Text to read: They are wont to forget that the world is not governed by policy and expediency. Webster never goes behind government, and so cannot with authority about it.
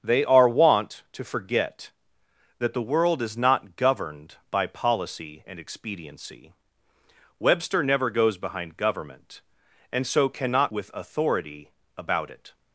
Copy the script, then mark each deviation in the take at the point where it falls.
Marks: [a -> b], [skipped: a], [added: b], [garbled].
They are wont to forget that the world is not governed by policy and expediency. Webster never goes behind government, and so cannot with authority about it.